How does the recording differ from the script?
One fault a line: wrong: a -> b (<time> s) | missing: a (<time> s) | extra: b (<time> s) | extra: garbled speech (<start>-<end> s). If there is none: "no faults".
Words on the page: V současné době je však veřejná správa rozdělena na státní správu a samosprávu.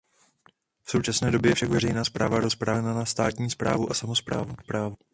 no faults